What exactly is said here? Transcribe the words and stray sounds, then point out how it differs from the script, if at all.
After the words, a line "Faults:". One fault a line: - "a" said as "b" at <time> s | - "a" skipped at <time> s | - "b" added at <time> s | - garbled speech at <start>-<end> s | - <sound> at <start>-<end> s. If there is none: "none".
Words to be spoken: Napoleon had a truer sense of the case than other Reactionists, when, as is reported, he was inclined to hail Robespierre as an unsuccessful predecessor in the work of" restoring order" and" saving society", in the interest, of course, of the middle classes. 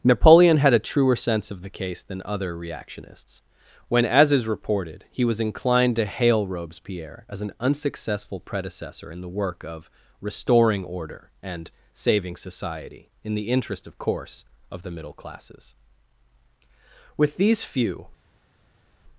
Napoleon had a truer sense of the case than other Reactionists, when, as is reported, he was inclined to hail Robespierre as an unsuccessful predecessor in the work of" restoring order" and" saving society", in the interest, of course, of the middle classes. With these few
Faults:
- "With these few" added at 17.2 s